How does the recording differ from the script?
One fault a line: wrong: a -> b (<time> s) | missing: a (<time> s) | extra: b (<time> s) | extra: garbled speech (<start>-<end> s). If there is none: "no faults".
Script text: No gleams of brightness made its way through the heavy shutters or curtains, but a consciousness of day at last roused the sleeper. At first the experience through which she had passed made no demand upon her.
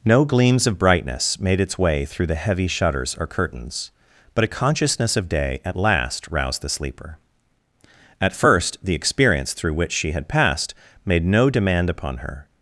no faults